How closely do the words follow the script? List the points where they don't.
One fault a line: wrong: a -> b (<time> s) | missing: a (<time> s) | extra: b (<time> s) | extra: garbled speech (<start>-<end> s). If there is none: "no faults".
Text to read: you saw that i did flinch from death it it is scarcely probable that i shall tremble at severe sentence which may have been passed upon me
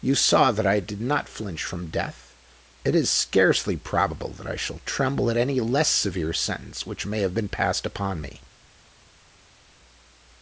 extra: not (1.0 s)
missing: it (3.0 s)
extra: any less (5.4 s)